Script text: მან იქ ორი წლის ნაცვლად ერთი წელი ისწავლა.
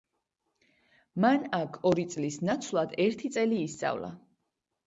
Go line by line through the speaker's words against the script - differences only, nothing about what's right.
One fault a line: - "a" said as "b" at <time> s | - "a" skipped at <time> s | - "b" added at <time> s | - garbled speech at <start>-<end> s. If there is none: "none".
- "იქ" said as "აქ" at 1.6 s